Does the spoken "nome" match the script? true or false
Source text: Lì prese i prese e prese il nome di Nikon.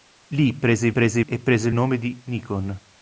true